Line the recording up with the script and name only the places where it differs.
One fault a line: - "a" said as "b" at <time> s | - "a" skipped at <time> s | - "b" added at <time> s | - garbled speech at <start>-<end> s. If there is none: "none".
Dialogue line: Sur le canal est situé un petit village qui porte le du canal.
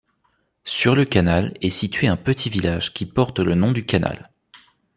- "nom" added at 3.5 s